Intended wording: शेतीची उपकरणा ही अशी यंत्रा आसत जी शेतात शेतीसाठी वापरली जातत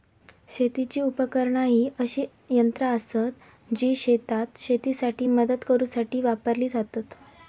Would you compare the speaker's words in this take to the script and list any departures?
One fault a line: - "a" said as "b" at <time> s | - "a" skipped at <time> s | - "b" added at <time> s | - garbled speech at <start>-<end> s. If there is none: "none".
- "मदत करूसाठी" added at 5.3 s